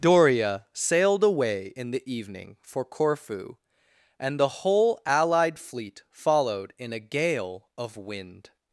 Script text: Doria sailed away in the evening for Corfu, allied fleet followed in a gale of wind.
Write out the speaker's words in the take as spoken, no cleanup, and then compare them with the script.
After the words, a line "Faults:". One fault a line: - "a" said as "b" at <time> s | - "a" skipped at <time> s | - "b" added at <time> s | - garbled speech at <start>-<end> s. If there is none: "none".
Doria sailed away in the evening for Corfu, and the whole allied fleet followed in a gale of wind.
Faults:
- "and the whole" added at 4.2 s